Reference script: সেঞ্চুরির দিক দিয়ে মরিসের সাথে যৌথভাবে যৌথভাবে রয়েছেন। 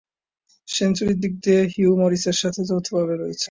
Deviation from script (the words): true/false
true